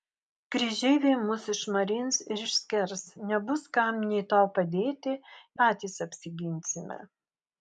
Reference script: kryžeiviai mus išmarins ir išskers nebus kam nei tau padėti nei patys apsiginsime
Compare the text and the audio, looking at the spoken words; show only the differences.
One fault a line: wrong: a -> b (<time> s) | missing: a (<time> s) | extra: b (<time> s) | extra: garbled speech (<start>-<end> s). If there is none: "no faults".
missing: nei (5.2 s)